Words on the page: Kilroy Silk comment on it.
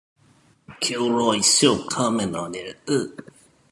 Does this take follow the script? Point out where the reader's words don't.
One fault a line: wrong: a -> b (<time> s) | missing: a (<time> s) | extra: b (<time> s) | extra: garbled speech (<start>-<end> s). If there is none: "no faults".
no faults